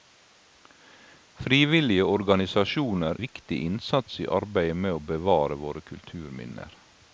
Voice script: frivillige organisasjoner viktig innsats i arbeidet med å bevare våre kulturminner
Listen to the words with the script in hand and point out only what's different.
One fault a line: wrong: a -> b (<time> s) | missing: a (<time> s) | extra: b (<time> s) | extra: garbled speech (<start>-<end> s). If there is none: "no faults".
no faults